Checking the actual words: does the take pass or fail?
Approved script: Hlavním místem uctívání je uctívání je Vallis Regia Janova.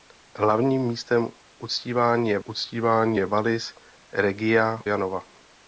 pass